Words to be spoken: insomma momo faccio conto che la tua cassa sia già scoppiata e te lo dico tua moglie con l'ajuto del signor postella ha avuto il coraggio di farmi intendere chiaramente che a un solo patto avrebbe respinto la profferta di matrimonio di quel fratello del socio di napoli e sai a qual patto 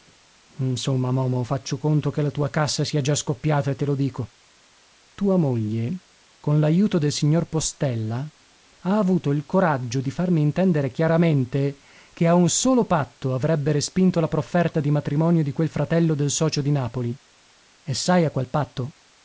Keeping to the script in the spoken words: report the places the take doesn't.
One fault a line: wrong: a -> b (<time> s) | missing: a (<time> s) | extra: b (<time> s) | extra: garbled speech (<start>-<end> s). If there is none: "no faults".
no faults